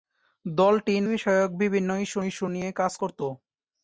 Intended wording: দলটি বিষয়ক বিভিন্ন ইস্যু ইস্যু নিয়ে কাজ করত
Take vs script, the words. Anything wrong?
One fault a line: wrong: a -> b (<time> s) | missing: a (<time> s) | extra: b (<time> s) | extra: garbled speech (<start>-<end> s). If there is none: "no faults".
no faults